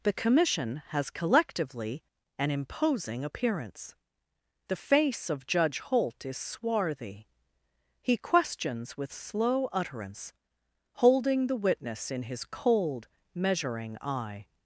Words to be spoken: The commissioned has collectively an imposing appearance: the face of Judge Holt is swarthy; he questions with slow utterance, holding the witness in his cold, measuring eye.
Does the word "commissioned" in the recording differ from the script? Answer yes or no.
yes